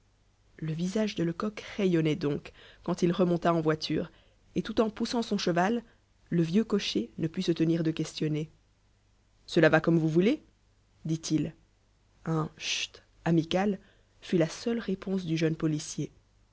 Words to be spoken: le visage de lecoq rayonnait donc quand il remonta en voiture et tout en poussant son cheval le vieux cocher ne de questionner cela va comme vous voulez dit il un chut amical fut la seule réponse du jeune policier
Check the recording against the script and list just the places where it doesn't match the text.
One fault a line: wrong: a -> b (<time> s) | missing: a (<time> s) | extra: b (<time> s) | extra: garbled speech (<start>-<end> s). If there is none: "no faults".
extra: put se tenir (7.3 s)